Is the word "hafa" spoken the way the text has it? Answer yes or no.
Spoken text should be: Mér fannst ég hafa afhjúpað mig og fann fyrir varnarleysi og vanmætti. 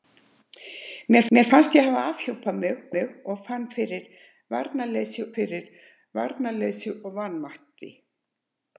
yes